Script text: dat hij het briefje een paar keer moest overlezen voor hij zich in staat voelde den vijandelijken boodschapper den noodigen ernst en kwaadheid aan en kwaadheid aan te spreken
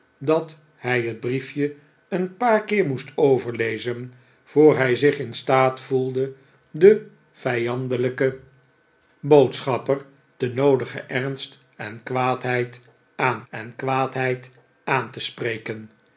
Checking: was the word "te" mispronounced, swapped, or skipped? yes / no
no